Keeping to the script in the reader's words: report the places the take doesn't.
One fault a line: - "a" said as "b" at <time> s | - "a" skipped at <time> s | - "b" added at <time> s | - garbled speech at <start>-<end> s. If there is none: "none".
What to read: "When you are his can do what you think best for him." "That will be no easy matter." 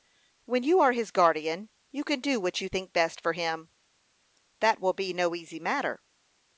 - "guardian you" added at 1.1 s